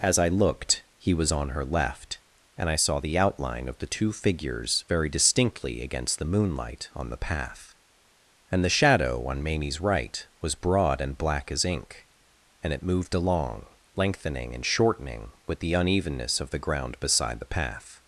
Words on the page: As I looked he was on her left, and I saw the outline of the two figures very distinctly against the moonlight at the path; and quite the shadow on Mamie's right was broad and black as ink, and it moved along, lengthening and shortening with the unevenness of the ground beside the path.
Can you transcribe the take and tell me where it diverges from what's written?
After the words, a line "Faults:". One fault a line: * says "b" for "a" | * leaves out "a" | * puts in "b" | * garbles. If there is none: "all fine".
As I looked he was on her left, and I saw the outline of the two figures very distinctly against the moonlight on the path; and the shadow on Mamie's right was broad and black as ink, and it moved along, lengthening and shortening with the unevenness of the ground beside the path.
Faults:
* says "on" for "at"
* leaves out "quite"